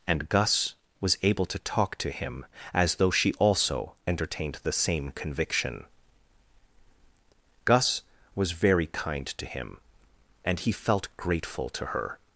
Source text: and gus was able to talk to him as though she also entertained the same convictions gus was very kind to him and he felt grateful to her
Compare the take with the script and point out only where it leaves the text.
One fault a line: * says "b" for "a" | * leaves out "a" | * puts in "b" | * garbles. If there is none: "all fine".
* says "conviction" for "convictions"